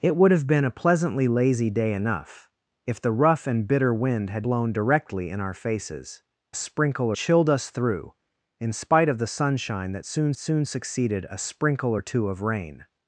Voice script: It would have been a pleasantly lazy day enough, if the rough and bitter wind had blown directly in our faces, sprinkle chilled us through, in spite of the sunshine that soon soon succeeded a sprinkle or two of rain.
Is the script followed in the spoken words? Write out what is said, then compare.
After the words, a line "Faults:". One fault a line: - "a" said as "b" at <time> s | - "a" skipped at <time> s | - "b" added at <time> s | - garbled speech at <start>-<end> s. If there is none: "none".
It would have been a pleasantly lazy day enough, if the rough and bitter wind had blown directly in our faces, sprinkle chilled us through, in spite of the sunshine that soon soon succeeded a sprinkle or two of rain.
Faults:
none